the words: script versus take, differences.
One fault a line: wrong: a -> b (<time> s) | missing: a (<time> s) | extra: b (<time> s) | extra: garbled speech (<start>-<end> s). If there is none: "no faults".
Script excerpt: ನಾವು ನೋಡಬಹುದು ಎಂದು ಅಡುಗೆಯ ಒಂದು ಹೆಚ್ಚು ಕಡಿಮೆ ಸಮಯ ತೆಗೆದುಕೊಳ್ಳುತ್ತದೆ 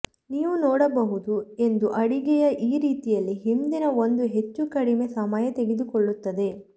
wrong: ನಾವು -> ನೀವು (0.3 s)
extra: ಈ ರೀತಿಯಲ್ಲಿ ಹಿಂದಿನ (2.7 s)